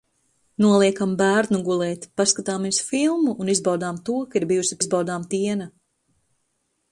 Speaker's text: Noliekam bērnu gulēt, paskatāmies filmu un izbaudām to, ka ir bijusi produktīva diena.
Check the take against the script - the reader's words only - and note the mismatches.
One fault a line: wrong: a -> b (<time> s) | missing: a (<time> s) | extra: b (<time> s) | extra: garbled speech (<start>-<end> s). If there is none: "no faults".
wrong: produktīva -> izbaudām (4.8 s)